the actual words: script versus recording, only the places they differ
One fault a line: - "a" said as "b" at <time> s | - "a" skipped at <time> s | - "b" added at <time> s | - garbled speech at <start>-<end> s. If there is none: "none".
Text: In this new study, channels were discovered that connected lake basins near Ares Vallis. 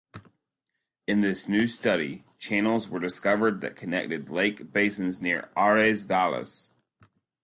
none